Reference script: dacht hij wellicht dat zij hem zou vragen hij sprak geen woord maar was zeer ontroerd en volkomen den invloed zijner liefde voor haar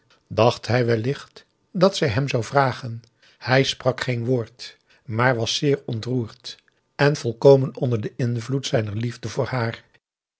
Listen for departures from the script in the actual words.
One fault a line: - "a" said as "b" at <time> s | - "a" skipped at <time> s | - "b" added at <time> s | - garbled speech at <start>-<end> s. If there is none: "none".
- "onder" added at 7.8 s